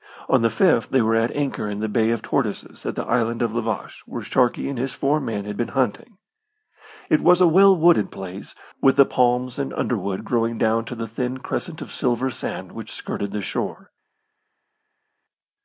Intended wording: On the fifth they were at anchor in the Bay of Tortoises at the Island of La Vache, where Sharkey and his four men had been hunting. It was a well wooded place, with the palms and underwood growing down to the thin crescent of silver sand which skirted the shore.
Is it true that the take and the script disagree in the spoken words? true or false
false